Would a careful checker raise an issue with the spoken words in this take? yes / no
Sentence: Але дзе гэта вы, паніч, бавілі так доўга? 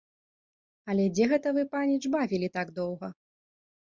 no